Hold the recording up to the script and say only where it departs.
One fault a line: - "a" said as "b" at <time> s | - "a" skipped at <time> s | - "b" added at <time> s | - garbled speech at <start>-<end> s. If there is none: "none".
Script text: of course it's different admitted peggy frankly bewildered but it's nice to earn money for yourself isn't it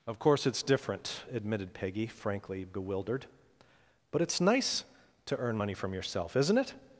- "for" said as "from" at 5.7 s